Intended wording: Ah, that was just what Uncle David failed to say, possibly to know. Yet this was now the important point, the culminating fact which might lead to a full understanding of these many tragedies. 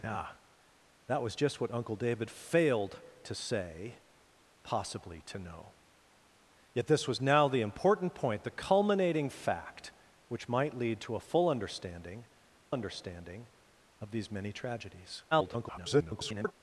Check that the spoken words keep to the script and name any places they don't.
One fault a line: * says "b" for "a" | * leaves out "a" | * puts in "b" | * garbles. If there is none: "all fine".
* puts in "understanding"
* garbles